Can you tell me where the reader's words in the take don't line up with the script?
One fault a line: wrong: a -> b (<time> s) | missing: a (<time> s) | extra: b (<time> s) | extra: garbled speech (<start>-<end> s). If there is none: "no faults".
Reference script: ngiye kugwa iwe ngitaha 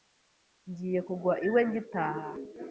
no faults